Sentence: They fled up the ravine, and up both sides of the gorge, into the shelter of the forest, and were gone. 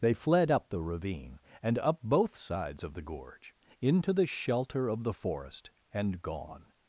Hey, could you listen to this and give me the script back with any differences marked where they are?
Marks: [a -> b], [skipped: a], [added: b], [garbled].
They fled up the ravine, and up both sides of the gorge, into the shelter of the forest, and [skipped: were] gone.